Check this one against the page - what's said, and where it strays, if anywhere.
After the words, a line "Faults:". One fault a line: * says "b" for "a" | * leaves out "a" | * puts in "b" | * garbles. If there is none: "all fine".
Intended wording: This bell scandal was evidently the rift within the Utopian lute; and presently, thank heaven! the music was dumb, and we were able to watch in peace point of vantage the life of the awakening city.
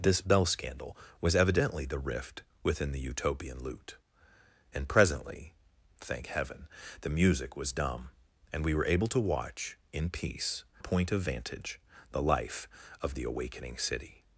This bell scandal was evidently the rift within the Utopian lute; and presently, thank heaven! the music was dumb, and we were able to watch in peace point of vantage the life of the awakening city.
Faults:
all fine